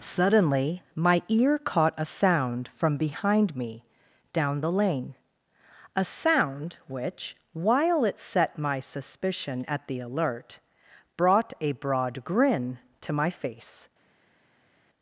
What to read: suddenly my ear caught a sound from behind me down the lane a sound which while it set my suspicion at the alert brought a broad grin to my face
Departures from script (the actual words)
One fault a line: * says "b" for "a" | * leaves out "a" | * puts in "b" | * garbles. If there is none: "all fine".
all fine